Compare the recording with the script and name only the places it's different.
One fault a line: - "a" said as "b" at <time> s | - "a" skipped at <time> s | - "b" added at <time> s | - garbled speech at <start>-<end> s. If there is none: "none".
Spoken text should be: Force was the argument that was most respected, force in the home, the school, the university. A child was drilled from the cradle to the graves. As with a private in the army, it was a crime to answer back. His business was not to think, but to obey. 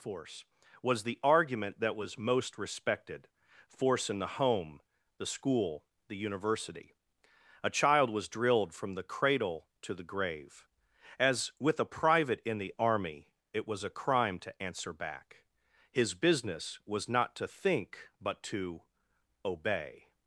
- "graves" said as "grave" at 10.0 s